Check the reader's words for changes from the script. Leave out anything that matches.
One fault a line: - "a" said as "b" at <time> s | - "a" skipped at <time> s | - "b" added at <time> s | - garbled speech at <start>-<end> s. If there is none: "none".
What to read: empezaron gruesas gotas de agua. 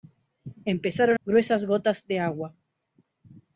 none